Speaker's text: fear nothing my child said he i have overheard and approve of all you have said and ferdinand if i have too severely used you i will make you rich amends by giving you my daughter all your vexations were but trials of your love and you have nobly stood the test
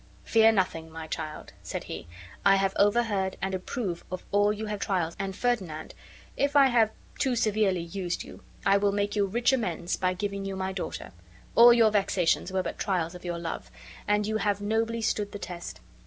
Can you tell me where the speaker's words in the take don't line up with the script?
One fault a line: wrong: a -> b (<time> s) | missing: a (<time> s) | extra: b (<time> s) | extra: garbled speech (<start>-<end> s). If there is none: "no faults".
wrong: said -> trials (4.8 s)